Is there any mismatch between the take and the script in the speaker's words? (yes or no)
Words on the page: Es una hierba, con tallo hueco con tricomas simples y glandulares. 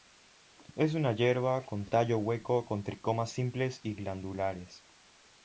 no